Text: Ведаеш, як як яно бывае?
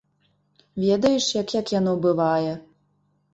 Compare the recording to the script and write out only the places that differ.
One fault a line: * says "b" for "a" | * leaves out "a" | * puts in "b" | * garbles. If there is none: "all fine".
all fine